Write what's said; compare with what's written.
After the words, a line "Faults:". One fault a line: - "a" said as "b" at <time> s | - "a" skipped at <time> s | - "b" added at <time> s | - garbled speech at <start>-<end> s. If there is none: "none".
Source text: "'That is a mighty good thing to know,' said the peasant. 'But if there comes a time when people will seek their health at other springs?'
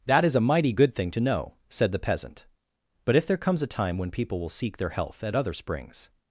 "'That is a mighty good thing to know,' said the peasant. 'But if there comes a time when people will seek their health at other springs?'
Faults:
none